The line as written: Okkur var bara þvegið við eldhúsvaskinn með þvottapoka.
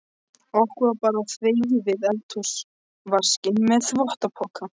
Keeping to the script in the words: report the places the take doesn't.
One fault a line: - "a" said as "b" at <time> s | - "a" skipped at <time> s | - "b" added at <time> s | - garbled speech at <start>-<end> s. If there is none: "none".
none